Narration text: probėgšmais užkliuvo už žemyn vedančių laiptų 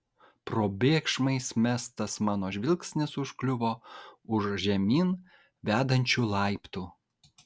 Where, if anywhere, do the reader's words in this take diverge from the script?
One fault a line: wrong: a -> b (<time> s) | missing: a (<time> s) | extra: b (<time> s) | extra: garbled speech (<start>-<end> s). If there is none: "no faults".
extra: mestas mano žvilgsnis (1.6 s)